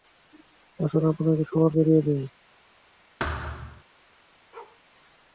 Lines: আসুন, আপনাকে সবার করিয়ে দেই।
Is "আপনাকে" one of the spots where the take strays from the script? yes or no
no